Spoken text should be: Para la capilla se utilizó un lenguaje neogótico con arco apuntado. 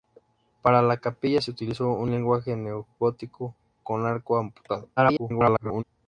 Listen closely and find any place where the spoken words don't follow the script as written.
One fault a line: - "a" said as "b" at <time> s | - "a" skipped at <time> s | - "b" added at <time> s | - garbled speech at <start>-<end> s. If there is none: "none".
- garbled speech at 5.0-5.8 s